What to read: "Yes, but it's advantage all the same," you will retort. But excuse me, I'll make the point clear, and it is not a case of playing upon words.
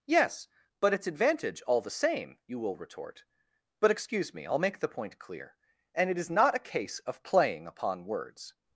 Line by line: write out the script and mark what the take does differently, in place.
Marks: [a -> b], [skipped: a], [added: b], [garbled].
"Yes, but it's advantage all the same," you will retort. But excuse me, I'll make the point clear, and it is not a case of playing upon words.